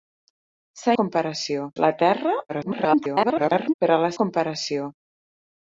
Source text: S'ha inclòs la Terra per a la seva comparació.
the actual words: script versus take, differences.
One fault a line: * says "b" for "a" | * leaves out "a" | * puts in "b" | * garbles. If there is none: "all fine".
* says "comparació" for "inclòs"
* garbles
* leaves out "seva"